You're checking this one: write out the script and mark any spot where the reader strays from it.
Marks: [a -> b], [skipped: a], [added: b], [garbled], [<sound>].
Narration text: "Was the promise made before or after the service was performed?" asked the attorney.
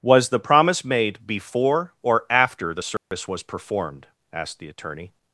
"Was the promise made before or after the service [dropout] was performed?" asked the attorney.